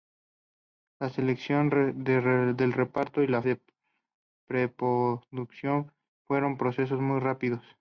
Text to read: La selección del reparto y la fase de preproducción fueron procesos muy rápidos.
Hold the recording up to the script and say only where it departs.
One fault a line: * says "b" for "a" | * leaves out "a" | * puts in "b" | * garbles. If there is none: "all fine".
* leaves out "fase"